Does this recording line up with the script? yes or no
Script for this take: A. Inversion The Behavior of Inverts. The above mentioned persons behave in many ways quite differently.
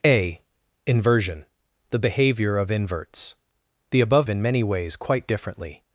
no